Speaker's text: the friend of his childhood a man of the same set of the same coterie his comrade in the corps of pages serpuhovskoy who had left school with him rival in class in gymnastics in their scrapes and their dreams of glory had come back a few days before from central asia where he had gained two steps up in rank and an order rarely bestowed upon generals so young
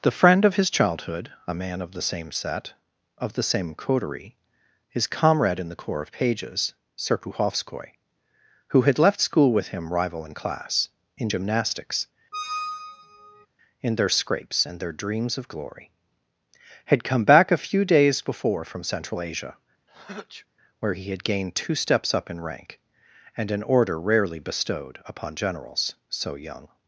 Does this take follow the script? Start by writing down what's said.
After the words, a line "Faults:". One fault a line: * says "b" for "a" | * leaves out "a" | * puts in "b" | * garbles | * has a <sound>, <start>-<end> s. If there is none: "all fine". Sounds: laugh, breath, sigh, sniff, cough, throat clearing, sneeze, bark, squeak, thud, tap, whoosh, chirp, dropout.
the friend of his childhood a man of the same set of the same coterie his comrade in the corps of pages serpuhovskoy who had left school with him rival in class in gymnastics in their scrapes and their dreams of glory had come back a few days before from central asia where he had gained two steps up in rank and an order rarely bestowed upon generals so young
Faults:
* has a squeak, 12.3-13.5 s
* has a sneeze, 19.9-20.5 s